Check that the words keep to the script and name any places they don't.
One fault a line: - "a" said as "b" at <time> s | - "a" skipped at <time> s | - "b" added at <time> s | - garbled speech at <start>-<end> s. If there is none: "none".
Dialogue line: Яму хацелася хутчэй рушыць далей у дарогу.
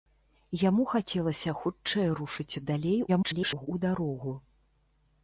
- garbled speech at 3.1-3.7 s